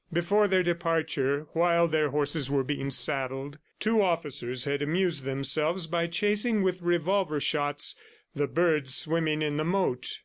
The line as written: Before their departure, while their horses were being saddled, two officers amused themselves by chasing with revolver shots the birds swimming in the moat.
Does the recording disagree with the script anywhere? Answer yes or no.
yes